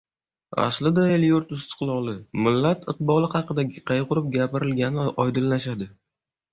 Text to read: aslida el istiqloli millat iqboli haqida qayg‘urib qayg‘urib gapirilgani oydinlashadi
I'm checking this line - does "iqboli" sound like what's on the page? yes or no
yes